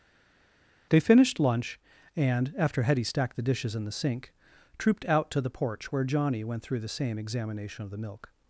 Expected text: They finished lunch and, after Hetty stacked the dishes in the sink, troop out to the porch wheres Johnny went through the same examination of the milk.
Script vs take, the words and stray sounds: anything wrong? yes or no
yes